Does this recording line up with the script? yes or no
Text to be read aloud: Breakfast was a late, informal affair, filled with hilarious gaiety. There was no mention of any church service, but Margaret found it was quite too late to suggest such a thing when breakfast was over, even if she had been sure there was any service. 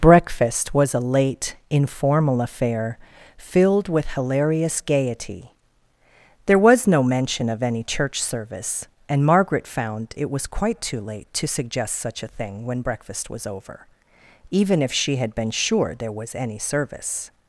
no